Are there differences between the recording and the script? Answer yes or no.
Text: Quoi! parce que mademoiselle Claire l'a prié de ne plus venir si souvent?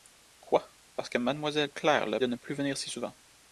yes